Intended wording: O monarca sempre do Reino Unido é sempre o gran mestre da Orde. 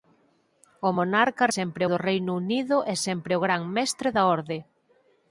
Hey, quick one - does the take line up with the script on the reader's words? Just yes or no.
yes